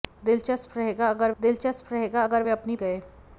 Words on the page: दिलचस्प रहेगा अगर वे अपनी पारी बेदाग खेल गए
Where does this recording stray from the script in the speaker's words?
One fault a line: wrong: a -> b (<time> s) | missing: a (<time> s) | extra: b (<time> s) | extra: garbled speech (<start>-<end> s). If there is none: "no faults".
wrong: वे अपनी पारी बेदाग खेल -> दिलचस्प रहेगा अगर वे अपनी (1.4 s)